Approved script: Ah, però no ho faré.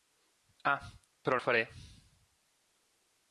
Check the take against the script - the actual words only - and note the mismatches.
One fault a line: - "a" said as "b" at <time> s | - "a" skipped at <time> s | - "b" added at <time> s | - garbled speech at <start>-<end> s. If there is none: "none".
- "no" skipped at 1.4 s